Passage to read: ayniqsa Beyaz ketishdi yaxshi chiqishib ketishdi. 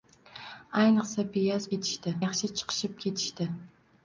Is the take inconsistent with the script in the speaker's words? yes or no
no